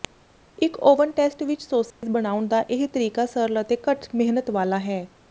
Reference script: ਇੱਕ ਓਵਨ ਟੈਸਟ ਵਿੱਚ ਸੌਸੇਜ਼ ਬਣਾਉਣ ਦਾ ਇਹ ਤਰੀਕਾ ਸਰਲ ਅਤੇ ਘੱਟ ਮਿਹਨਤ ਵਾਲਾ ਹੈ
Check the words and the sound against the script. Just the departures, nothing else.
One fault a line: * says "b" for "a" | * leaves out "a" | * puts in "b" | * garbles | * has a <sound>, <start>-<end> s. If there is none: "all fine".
* has a dropout, 1.9-2.0 s